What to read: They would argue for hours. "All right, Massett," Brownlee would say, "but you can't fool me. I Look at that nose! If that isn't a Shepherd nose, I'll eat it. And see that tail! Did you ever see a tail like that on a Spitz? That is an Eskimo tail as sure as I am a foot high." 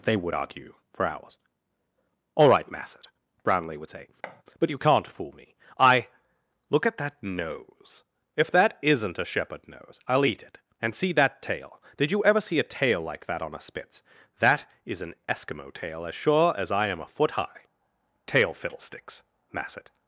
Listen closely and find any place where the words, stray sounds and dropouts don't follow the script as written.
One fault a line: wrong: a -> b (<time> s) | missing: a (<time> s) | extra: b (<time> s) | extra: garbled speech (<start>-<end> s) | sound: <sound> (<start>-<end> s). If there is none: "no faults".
sound: thud (4.2-4.4 s)
extra: Tail fiddlesticks Massett (18.3 s)